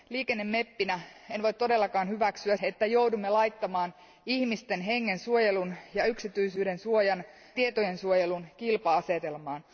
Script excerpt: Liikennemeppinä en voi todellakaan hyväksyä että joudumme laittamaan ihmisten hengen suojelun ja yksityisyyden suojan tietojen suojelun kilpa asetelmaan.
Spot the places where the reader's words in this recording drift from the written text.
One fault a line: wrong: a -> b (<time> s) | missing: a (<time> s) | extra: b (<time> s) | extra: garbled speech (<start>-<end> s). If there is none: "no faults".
no faults